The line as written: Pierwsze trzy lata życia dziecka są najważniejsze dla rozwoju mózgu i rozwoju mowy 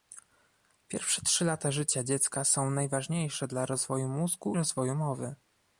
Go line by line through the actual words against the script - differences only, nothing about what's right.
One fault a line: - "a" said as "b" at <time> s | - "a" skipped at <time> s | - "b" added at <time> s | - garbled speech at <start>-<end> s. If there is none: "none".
- "i" skipped at 4.6 s